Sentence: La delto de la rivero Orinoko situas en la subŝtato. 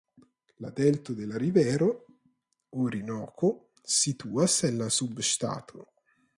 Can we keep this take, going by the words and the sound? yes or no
yes